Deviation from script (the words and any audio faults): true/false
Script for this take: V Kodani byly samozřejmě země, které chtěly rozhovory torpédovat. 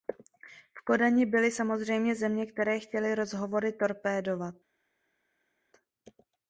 false